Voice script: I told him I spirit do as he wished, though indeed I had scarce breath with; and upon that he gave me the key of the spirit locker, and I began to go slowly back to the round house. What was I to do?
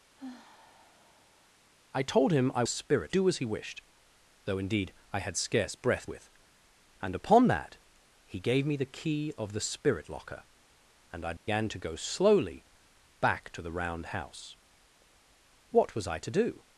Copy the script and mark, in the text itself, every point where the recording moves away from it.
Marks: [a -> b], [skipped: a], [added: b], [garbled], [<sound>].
[sigh] I told him I spirit do as he wished, though indeed I had scarce breath with; and upon that he gave me the key of the spirit locker, and I began [dropout] to go slowly back to the round house. What was I to do?